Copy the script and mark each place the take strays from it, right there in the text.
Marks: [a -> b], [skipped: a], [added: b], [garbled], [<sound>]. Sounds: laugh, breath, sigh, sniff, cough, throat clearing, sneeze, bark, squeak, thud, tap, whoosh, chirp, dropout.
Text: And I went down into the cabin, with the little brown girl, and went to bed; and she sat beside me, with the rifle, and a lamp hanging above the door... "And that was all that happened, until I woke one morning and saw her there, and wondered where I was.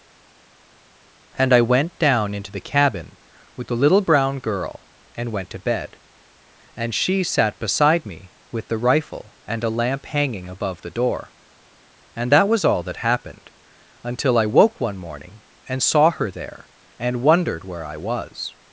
And I went down into the cabin, with the little brown girl, and went to bed; and she sat beside me, with the rifle, and a lamp hanging above the door... "And that was all that happened, until I woke one morning and saw her there, and wondered where I was.